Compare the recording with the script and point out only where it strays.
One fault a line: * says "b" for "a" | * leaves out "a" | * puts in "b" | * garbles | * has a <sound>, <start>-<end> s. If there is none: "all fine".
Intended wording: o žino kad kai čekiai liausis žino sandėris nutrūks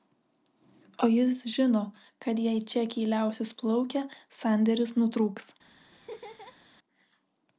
* puts in "jis"
* says "jei" for "kai"
* says "plaukę" for "žino"
* has a laugh, 5.9-6.6 s